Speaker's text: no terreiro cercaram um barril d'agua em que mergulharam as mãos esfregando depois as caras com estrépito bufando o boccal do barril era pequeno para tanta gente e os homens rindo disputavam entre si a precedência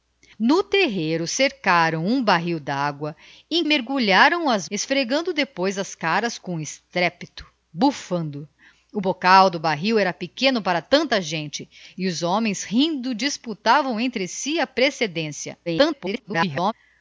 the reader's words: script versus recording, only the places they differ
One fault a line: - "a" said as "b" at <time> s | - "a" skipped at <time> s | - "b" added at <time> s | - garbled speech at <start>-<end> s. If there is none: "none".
- "que" skipped at 3.6 s
- "mãos" skipped at 4.7 s
- garbled speech at 15.7-16.7 s